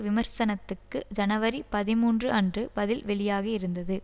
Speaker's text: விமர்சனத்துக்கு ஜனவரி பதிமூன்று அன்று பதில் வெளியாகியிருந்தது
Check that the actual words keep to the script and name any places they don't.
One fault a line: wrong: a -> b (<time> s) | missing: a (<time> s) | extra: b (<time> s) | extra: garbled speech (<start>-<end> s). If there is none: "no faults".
no faults